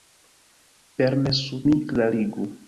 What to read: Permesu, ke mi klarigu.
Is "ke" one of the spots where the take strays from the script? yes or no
yes